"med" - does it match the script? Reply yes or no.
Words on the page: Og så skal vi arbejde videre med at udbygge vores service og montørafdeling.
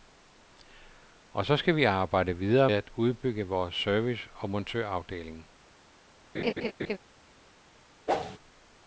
no